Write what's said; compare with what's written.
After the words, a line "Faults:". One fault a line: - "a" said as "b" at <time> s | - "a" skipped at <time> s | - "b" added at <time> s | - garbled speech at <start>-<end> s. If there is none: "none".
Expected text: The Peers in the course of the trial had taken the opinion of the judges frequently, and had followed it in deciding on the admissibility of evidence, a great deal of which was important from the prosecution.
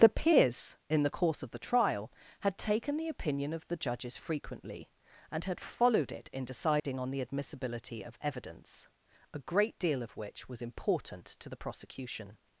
The Peers in the course of the trial had taken the opinion of the judges frequently, and had followed it in deciding on the admissibility of evidence, a great deal of which was important to the prosecution.
Faults:
- "from" said as "to" at 11.2 s